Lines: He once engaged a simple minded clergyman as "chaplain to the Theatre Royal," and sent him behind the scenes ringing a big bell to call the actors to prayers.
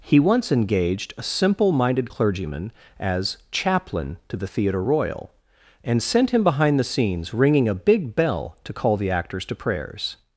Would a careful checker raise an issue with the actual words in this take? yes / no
no